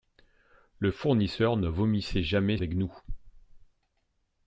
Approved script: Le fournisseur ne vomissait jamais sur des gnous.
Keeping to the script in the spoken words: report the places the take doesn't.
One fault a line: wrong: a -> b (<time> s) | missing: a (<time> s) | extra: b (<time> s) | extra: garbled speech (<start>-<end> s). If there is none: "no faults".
missing: sur (2.6 s)